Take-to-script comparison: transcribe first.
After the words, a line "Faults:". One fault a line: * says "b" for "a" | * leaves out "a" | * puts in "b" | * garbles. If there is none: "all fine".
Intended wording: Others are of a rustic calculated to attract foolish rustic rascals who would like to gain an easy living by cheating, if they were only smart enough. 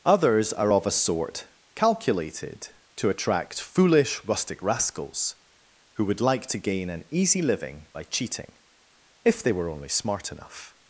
Others are of a sort calculated to attract foolish rustic rascals who would like to gain an easy living by cheating, if they were only smart enough.
Faults:
* says "sort" for "rustic"